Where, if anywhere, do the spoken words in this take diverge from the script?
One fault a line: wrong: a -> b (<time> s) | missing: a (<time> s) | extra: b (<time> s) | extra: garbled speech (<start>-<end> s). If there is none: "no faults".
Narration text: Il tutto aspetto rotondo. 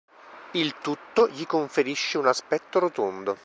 extra: gli conferisce un (1.3 s)